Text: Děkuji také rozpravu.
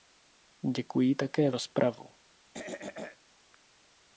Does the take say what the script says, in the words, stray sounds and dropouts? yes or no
no